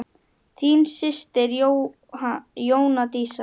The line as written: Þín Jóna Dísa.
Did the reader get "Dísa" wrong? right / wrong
right